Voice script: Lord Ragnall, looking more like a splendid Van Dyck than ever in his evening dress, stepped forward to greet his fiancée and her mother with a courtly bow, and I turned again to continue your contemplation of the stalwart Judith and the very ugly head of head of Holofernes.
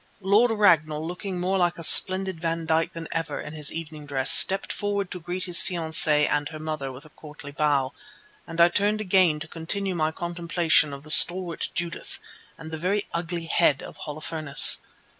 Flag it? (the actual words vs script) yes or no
yes